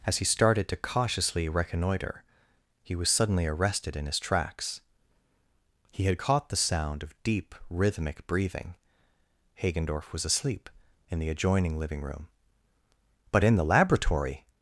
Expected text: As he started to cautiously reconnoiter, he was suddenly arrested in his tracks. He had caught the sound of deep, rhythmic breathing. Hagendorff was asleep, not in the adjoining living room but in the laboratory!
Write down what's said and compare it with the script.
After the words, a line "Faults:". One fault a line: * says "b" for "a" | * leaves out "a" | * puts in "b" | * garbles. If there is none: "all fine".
As he started to cautiously reconnoiter, he was suddenly arrested in his tracks. He had caught the sound of deep, rhythmic breathing. Hagendorff was asleep, in the adjoining living room but in the laboratory!
Faults:
* leaves out "not"